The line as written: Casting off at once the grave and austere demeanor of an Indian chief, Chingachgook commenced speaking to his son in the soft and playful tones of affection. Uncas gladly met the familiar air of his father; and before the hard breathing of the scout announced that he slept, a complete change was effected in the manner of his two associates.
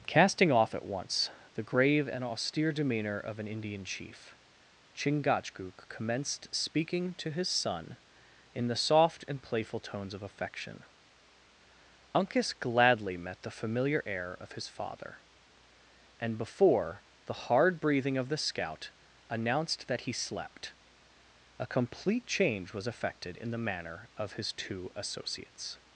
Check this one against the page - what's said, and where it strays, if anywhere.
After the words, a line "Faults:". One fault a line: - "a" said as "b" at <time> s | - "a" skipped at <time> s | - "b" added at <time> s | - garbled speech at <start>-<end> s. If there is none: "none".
Casting off at once the grave and austere demeanor of an Indian chief, Chingachgook commenced speaking to his son in the soft and playful tones of affection. Uncas gladly met the familiar air of his father; and before the hard breathing of the scout announced that he slept, a complete change was effected in the manner of his two associates.
Faults:
none